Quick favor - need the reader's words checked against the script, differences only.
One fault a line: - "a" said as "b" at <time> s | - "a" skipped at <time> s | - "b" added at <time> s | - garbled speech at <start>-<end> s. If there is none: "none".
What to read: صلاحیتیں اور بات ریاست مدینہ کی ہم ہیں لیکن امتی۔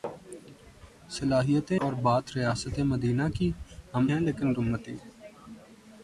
none